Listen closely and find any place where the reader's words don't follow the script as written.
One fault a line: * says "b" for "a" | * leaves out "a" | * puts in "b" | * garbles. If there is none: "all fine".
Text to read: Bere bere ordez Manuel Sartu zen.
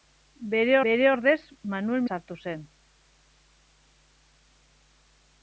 all fine